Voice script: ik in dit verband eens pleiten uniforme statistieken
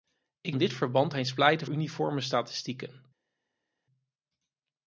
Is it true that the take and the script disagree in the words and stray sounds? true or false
false